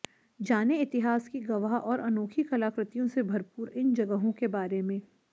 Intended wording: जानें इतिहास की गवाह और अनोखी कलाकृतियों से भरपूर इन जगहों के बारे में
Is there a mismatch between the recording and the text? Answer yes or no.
no